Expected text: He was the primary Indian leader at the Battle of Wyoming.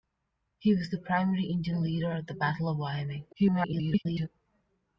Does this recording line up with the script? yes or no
no